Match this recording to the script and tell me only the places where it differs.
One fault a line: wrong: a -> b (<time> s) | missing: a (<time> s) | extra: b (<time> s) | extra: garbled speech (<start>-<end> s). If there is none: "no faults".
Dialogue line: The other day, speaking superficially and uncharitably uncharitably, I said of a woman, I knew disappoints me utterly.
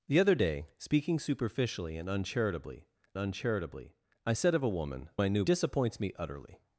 no faults